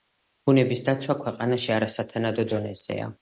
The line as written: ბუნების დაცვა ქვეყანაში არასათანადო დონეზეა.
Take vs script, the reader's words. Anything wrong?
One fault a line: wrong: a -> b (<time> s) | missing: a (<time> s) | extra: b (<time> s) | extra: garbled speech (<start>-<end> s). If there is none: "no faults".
no faults